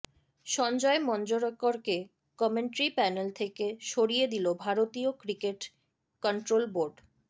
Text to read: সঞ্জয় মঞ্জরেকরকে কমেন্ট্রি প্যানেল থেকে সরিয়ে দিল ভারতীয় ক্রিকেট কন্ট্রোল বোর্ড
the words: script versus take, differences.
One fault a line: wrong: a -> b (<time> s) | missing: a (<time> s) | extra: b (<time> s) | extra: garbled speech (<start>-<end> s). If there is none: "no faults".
no faults